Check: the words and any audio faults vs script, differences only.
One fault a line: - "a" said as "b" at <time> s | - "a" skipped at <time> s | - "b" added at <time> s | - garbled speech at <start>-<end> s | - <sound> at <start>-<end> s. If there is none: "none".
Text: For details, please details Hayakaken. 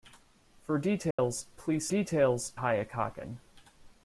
- dropout at 1.1-1.2 s